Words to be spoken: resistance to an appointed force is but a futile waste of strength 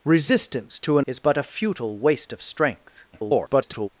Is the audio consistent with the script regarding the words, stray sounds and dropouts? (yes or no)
no